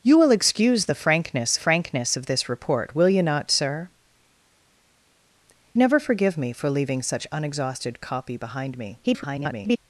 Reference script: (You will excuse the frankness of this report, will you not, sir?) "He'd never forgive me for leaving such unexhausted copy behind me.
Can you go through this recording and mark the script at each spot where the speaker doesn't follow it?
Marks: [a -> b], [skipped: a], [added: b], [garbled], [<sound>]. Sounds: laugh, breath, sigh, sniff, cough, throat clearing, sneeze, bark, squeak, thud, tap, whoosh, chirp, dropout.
(You will excuse the frankness [added: frankness] of this report, will you not, sir?) [skipped: "He'd] never forgive me for leaving such unexhausted copy behind me. [garbled]